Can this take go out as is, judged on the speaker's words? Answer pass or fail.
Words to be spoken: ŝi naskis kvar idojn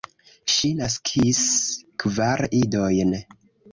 pass